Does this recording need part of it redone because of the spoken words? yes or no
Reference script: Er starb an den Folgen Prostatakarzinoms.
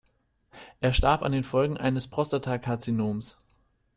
yes